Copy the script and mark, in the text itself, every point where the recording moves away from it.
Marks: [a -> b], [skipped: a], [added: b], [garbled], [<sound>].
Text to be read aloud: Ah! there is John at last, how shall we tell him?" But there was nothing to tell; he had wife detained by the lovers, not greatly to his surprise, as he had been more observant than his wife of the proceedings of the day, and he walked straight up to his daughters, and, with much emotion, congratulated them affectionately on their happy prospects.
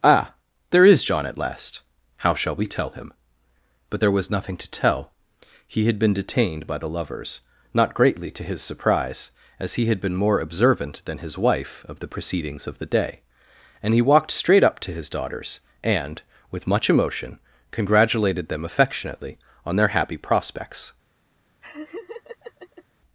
Ah! there is John at last, how shall we tell him?" But there was nothing to tell; he had [wife -> been] detained by the lovers, not greatly to his surprise, as he had been more observant than his wife of the proceedings of the day, and he walked straight up to his daughters, and, with much emotion, congratulated them affectionately on their happy prospects. [laugh]